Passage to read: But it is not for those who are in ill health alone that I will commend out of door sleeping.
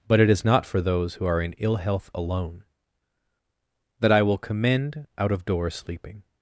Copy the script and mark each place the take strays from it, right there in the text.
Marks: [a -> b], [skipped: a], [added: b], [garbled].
But it is not for those who are in ill health alone that I will commend out of door sleeping.